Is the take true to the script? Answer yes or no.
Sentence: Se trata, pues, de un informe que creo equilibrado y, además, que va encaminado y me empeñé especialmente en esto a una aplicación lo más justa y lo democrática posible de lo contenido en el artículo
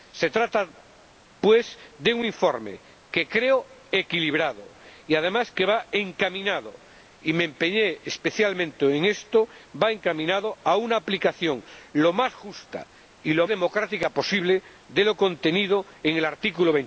yes